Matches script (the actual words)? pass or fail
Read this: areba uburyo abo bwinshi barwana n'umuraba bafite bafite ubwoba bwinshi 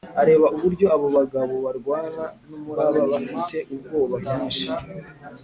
fail